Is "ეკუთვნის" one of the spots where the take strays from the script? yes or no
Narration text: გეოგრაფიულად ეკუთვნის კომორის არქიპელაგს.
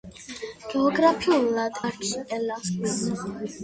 yes